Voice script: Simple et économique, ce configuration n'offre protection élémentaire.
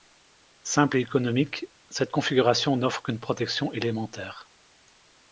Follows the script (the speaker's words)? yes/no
no